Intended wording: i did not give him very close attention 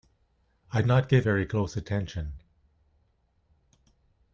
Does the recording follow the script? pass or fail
fail